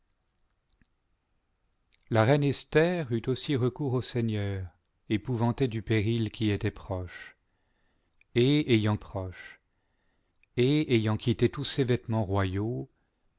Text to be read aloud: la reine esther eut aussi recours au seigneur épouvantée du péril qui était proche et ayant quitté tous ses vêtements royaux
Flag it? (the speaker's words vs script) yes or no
yes